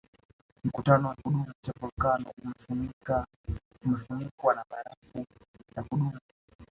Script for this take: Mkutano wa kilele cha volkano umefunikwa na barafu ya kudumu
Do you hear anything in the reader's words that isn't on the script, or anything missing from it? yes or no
yes